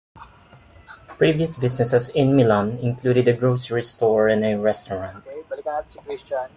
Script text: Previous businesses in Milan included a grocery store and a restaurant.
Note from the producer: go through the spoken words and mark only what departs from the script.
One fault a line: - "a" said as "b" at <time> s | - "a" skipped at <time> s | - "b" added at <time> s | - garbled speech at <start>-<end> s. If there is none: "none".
none